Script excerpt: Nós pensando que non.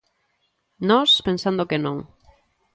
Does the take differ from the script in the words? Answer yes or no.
no